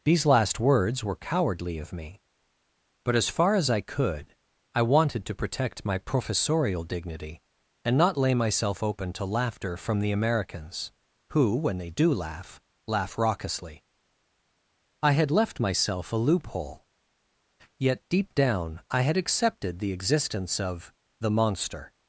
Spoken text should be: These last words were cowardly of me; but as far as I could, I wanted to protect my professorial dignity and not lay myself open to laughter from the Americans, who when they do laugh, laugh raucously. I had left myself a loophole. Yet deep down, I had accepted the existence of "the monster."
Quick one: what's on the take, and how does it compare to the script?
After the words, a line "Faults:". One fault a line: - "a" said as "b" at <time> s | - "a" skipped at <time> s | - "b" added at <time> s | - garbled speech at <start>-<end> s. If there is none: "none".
These last words were cowardly of me; but as far as I could, I wanted to protect my professorial dignity and not lay myself open to laughter from the Americans, who when they do laugh, laugh raucously. I had left myself a loophole. Yet deep down, I had accepted the existence of "the monster."
Faults:
none